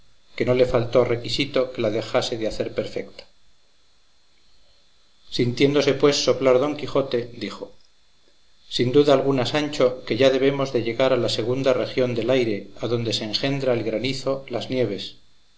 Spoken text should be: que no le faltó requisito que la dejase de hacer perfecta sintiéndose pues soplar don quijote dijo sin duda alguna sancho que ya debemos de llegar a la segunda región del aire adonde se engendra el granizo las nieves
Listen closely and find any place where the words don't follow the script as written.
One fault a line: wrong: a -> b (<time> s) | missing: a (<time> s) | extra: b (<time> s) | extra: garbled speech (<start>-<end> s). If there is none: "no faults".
no faults